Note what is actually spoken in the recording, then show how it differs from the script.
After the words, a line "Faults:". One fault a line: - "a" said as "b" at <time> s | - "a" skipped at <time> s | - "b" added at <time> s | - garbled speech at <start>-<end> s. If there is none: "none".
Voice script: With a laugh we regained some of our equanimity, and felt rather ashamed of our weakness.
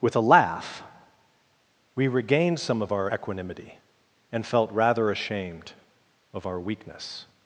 With a laugh we regained some of our equanimity, and felt rather ashamed of our weakness.
Faults:
none